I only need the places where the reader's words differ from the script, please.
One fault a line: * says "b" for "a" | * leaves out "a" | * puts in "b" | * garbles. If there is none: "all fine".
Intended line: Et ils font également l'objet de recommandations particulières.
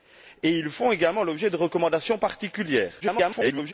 * garbles